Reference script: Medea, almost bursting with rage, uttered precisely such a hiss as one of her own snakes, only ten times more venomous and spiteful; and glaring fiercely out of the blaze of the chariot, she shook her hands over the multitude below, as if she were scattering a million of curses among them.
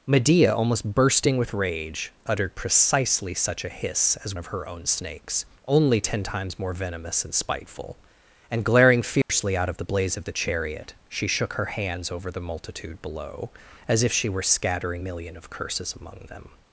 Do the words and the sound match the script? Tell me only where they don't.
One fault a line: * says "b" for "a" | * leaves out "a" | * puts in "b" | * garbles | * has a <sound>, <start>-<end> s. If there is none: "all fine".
* leaves out "one"
* has a dropout, 9.2-9.3 s
* leaves out "a"